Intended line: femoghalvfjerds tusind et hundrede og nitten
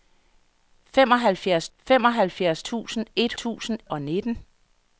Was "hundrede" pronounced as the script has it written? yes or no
no